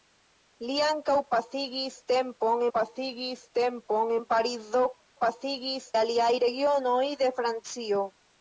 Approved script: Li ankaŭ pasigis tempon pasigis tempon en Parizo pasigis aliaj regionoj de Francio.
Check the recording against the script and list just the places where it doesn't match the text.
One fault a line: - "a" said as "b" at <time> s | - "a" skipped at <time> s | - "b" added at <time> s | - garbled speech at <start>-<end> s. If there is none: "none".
none